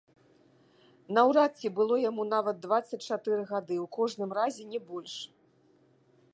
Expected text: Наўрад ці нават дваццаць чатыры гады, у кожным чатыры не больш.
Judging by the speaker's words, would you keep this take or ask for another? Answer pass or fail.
fail